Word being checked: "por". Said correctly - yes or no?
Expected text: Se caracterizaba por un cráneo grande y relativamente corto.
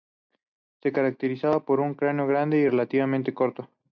yes